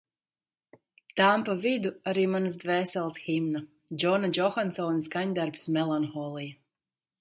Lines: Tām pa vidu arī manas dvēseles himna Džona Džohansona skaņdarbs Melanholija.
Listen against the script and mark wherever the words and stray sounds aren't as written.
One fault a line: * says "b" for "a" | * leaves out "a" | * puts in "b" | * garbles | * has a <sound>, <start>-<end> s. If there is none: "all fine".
all fine